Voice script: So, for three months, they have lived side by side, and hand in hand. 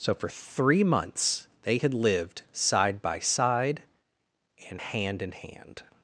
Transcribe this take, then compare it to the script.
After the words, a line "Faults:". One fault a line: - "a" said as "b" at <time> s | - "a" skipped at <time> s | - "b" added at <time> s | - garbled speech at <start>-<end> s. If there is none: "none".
So, for three months, they had lived side by side, and hand in hand.
Faults:
- "have" said as "had" at 1.8 s